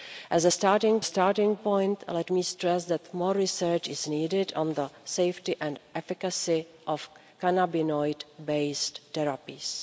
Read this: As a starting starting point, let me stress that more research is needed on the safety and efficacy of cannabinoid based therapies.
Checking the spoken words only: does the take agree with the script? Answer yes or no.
yes